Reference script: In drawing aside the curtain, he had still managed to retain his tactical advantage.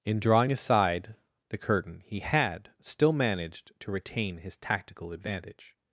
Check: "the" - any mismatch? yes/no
no